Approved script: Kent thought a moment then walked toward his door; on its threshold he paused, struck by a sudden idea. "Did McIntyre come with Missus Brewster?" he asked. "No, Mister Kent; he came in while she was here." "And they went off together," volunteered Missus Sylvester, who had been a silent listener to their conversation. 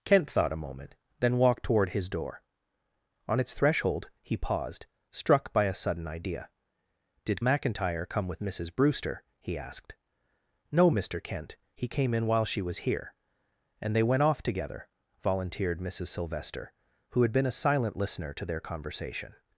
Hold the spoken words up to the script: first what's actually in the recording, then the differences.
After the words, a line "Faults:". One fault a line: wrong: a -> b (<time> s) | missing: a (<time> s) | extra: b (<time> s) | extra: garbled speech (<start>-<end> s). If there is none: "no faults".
Kent thought a moment then walked toward his door; on its threshold he paused, struck by a sudden idea. "Did McIntyre come with Missus Brewster?" he asked. "No, Mister Kent; he came in while she was here." "And they went off together," volunteered Missus Sylvester, who had been a silent listener to their conversation.
Faults:
no faults